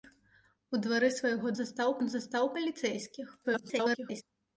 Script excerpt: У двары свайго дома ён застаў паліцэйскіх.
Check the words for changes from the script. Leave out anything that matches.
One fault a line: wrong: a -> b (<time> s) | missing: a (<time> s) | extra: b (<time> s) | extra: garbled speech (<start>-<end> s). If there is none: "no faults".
wrong: дома -> застаў (1.6 s)
extra: garbled speech (3.4-4.2 s)